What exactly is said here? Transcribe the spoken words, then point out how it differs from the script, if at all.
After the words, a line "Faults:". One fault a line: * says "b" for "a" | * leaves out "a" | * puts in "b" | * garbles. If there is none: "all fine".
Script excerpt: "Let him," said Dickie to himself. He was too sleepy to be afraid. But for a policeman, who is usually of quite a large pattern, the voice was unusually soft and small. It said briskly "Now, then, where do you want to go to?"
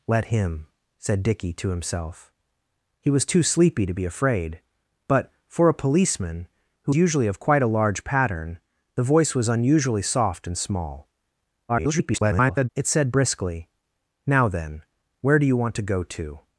"Let him," said Dickie to himself. He was too sleepy to be afraid. But for a policeman, who usually of quite a large pattern, the voice was unusually soft and small. [garbled] It said briskly "Now, then, where do you want to go to?"
Faults:
* leaves out "is"
* garbles